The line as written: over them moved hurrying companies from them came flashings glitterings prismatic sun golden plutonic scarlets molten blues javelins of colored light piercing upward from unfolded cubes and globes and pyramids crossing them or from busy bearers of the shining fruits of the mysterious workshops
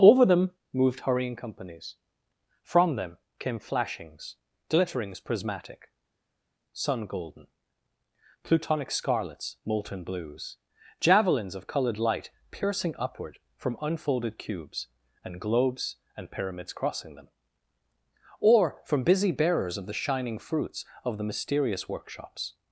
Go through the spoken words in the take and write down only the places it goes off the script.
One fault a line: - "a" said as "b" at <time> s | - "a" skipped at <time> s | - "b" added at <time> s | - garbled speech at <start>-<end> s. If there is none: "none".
none